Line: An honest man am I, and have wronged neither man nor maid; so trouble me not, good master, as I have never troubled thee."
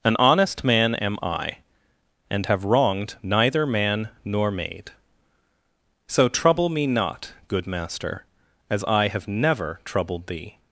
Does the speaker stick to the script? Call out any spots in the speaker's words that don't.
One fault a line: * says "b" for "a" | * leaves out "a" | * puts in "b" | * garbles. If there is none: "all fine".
all fine